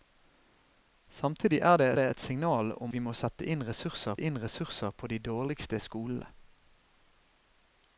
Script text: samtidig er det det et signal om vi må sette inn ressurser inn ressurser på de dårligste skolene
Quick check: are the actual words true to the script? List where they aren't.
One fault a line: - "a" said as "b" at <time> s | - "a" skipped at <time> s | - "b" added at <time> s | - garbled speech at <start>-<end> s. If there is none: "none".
none